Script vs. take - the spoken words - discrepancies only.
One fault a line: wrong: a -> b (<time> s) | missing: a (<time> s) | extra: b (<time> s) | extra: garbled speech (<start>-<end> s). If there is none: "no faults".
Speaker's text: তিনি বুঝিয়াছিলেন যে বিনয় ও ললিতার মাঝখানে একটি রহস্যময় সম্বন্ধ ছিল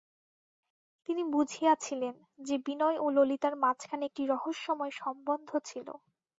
no faults